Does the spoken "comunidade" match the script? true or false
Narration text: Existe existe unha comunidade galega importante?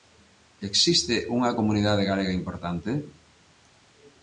true